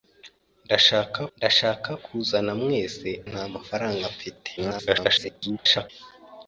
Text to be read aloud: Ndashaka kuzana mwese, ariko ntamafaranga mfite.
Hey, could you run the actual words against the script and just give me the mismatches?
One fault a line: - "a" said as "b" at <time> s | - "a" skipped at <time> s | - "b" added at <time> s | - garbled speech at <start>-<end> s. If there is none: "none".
- "ndashaka" added at 1.4 s
- "ariko" skipped at 3.1 s
- garbled speech at 4.6-5.9 s